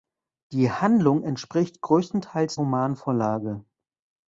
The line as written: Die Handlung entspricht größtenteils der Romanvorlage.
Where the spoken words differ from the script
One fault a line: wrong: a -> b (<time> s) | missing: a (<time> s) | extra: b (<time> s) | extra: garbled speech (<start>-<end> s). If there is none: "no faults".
missing: der (2.6 s)